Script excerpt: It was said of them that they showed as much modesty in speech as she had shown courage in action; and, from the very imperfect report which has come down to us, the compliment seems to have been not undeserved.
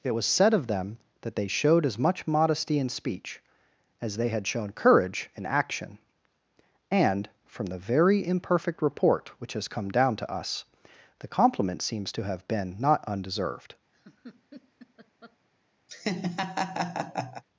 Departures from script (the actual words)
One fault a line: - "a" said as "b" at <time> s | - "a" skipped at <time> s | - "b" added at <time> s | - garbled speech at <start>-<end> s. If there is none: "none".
- "she" said as "they" at 4.2 s